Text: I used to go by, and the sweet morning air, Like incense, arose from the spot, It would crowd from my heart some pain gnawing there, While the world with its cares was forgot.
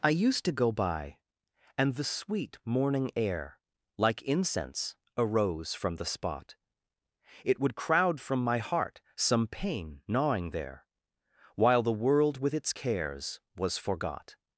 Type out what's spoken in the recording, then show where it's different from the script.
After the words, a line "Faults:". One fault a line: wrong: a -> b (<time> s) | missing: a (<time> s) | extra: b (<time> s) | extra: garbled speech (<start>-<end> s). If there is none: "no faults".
I used to go by, and the sweet morning air, Like incense, arose from the spot, It would crowd from my heart some pain gnawing there, While the world with its cares was forgot.
Faults:
no faults